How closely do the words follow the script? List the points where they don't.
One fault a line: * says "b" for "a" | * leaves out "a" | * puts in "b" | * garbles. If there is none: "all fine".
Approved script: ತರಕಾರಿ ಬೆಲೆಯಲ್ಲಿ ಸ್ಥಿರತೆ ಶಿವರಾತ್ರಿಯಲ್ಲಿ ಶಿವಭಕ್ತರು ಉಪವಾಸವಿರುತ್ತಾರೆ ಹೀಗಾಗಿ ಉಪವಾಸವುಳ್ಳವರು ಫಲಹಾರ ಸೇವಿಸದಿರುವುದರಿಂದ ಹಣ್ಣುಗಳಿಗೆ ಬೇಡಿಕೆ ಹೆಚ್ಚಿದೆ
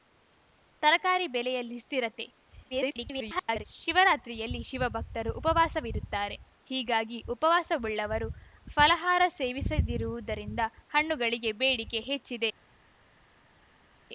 * garbles